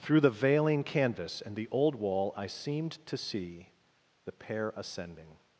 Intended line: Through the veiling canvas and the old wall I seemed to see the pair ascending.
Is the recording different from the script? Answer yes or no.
no